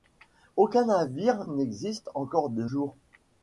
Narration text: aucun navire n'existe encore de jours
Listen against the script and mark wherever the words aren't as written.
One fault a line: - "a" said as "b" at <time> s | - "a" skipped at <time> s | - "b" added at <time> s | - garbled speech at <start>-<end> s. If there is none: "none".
none